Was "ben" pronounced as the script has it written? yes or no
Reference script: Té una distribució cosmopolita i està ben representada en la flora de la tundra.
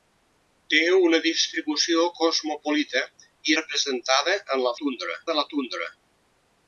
no